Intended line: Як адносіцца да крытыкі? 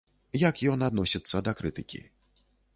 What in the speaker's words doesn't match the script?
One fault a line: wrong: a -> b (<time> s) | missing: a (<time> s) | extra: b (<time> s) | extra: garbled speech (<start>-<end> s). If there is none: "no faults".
extra: ён (0.7 s)